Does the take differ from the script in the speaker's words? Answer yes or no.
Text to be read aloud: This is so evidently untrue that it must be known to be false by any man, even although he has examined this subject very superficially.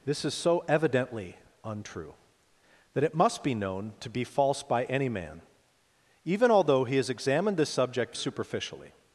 yes